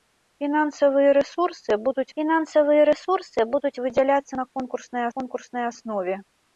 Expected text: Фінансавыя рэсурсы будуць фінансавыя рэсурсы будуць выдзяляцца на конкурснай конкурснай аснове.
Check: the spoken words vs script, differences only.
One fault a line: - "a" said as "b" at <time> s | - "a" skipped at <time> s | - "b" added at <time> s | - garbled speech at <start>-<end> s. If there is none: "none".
none